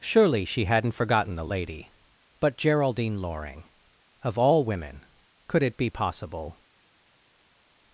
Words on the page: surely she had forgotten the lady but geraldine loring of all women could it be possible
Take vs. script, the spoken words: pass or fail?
fail